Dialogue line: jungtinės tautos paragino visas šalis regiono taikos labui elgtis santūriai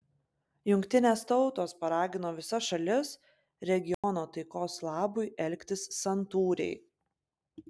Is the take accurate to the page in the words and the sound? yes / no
no